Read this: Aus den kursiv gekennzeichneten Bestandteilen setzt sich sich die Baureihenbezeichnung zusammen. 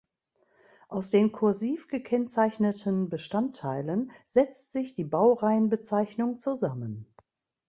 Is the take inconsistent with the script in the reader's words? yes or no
yes